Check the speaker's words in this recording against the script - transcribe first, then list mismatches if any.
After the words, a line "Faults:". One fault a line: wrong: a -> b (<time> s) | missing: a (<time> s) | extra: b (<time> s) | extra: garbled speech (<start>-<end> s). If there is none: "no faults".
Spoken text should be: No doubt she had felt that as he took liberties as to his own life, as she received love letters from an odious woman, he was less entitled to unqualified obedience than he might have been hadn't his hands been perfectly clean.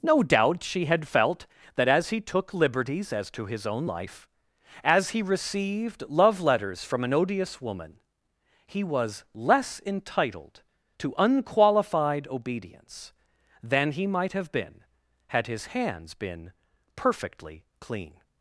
No doubt she had felt that as he took liberties as to his own life, as he received love letters from an odious woman, he was less entitled to unqualified obedience than he might have been had his hands been perfectly clean.
Faults:
wrong: she -> he (5.1 s)
wrong: hadn't -> had (15.3 s)